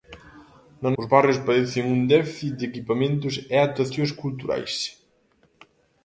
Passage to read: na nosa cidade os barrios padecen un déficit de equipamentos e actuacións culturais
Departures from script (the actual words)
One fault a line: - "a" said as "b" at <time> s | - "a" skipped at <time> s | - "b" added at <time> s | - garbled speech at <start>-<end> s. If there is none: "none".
- "nosa cidade" skipped at 0.9 s